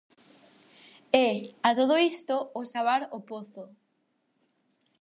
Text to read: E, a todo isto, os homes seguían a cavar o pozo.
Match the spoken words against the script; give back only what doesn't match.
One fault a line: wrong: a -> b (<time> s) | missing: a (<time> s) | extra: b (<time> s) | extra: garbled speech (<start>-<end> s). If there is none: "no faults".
missing: homes seguían a (2.7 s)